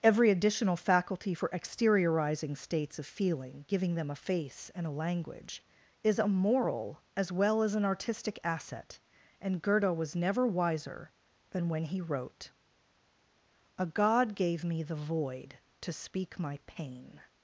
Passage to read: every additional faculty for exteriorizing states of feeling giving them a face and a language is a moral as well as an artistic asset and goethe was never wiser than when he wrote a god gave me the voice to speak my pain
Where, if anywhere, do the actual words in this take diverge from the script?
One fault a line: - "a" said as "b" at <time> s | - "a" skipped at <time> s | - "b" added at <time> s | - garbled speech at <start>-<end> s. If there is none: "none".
- "voice" said as "void" at 15.0 s